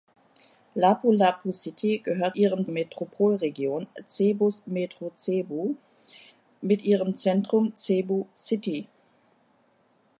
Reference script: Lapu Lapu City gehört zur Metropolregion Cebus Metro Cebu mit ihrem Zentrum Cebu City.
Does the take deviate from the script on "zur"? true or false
true